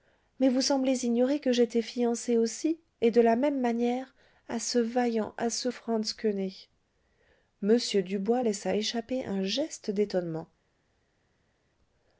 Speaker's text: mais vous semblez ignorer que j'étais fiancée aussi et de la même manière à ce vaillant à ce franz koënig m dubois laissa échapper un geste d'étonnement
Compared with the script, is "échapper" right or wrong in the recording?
right